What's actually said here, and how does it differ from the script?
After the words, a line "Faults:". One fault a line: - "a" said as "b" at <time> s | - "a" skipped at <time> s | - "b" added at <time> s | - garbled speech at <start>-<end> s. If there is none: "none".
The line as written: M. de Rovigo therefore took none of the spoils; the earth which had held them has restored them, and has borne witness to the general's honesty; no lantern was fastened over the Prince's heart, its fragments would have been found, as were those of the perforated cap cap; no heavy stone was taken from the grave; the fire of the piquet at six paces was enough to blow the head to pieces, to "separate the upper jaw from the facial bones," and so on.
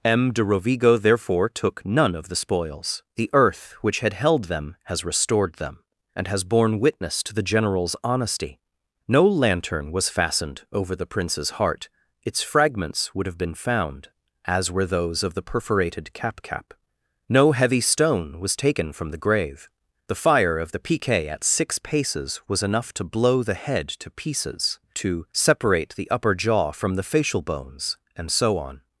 M. de Rovigo therefore took none of the spoils; the earth which had held them has restored them, and has borne witness to the general's honesty; no lantern was fastened over the Prince's heart, its fragments would have been found, as were those of the perforated cap cap; no heavy stone was taken from the grave; the fire of the piquet at six paces was enough to blow the head to pieces, to "separate the upper jaw from the facial bones," and so on.
Faults:
none